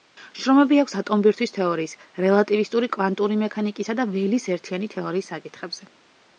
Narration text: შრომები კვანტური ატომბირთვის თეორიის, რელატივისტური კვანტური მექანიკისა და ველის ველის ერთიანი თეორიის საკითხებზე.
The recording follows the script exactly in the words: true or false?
false